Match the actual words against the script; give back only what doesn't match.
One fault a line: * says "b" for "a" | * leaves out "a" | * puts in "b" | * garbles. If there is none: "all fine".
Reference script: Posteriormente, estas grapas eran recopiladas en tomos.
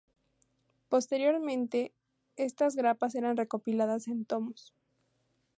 all fine